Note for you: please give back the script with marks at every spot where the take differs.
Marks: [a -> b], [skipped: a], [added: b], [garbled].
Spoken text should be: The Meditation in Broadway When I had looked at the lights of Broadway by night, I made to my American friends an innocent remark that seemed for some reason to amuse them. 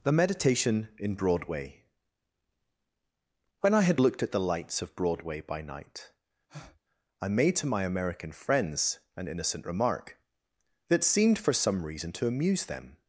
The Meditation in Broadway When I had looked at the lights of Broadway by night, I made to my American friends an innocent remark that seemed for some reason to amuse them.